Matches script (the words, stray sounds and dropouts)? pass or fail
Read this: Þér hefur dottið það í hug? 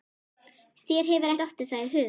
pass